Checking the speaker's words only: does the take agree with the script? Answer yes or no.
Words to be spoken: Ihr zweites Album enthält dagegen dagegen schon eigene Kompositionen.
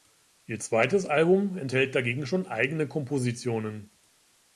no